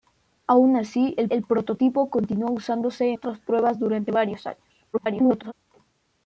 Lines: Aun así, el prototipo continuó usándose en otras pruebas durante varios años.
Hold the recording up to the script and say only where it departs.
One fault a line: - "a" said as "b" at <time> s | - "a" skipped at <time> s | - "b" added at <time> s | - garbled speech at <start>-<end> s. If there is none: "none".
- "el" added at 1.3 s
- "en" skipped at 3.1 s
- garbled speech at 4.9-5.5 s